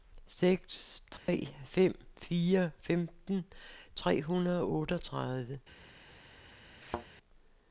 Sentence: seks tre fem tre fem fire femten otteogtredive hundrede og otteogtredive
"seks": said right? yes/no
yes